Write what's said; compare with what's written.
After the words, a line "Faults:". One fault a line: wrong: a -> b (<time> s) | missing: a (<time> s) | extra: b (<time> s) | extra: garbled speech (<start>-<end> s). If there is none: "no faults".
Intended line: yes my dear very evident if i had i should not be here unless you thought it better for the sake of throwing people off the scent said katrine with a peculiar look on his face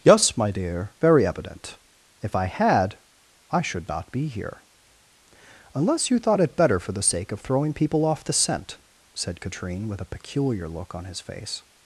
yes my dear very evident if i had i should not be here unless you thought it better for the sake of throwing people off the scent said katrine with a peculiar look on his face
Faults:
no faults